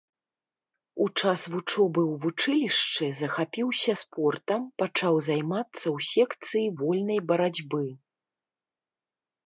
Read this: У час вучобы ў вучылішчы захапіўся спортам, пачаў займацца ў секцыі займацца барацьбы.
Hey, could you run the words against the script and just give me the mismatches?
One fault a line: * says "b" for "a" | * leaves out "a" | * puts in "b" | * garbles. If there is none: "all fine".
* says "вольнай" for "займацца"